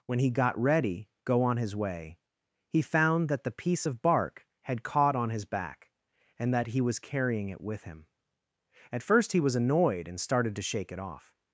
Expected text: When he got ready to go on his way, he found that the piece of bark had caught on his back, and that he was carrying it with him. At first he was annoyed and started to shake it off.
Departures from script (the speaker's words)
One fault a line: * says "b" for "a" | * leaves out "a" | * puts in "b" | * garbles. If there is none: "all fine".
* leaves out "to"